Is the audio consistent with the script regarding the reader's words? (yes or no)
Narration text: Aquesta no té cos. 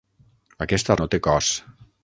yes